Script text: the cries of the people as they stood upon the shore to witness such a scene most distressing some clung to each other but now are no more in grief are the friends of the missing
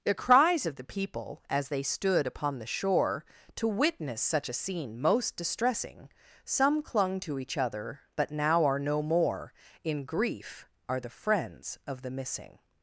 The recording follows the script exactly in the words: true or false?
true